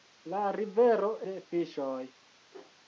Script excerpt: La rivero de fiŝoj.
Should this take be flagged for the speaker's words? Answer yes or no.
no